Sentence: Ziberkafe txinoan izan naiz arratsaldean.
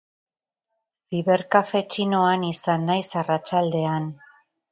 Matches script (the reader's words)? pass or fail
pass